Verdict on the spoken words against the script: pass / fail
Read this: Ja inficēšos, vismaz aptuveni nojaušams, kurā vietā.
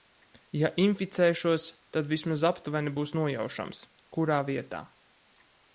fail